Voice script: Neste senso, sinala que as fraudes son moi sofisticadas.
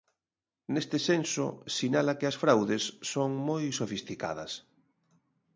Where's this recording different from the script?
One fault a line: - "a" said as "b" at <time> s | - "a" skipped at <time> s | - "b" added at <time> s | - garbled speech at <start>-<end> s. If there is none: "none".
none